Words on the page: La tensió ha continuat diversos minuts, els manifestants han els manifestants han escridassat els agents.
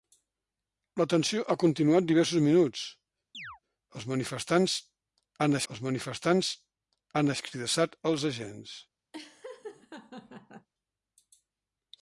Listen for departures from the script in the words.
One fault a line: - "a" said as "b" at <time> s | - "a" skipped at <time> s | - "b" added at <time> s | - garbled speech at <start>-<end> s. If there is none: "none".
none